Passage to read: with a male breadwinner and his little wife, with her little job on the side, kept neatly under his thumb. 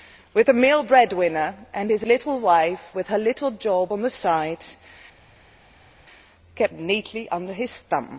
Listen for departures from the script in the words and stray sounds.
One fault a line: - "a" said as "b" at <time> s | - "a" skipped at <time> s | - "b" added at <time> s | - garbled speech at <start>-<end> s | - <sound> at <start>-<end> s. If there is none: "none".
none